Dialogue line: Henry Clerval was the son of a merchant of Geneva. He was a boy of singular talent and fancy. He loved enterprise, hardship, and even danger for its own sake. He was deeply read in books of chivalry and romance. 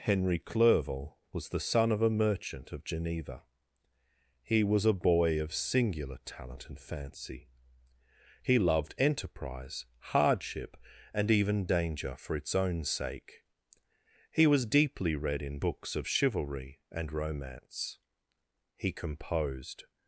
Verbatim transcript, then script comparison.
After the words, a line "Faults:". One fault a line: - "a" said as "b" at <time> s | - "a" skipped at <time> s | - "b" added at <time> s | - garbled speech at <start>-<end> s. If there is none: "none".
Henry Clerval was the son of a merchant of Geneva. He was a boy of singular talent and fancy. He loved enterprise, hardship, and even danger for its own sake. He was deeply read in books of chivalry and romance. He composed
Faults:
- "He composed" added at 18.8 s